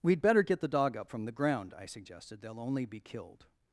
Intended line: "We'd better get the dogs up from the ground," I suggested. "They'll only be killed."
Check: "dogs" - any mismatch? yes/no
yes